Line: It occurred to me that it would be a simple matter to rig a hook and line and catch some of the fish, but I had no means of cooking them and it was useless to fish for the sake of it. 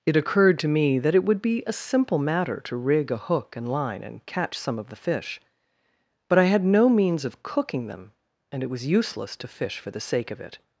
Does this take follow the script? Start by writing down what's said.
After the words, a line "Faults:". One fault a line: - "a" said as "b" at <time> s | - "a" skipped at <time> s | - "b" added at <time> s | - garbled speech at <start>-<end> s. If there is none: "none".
It occurred to me that it would be a simple matter to rig a hook and line and catch some of the fish, but I had no means of cooking them and it was useless to fish for the sake of it.
Faults:
none